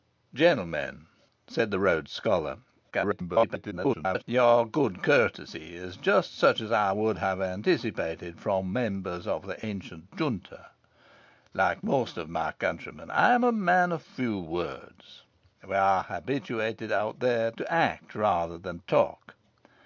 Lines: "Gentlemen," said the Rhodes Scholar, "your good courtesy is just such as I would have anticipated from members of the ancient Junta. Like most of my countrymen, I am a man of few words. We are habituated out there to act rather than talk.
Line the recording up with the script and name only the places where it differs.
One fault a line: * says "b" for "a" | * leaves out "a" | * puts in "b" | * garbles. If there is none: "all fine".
* garbles